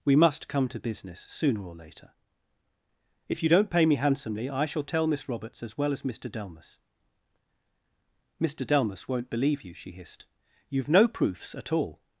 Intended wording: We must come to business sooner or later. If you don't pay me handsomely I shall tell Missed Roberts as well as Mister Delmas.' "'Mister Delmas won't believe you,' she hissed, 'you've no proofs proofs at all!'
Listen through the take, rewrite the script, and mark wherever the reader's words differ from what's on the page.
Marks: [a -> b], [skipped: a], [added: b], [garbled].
We must come to business sooner or later. If you don't pay me handsomely I shall tell [Missed -> Miss] Roberts as well as Mister Delmas.' "'Mister Delmas won't believe you,' she hissed, 'you've no proofs [skipped: proofs] at all!'